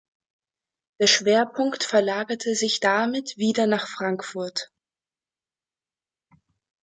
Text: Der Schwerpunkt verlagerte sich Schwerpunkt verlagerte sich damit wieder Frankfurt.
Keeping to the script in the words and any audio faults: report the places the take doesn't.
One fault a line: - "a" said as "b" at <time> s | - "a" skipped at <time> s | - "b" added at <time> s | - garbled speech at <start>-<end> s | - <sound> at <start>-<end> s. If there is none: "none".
- "Schwerpunkt verlagerte sich" skipped at 2.8 s
- "nach" added at 3.6 s